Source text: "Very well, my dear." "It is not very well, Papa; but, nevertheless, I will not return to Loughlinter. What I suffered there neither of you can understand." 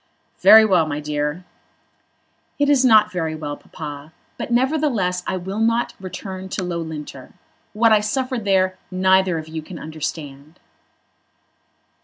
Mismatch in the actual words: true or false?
false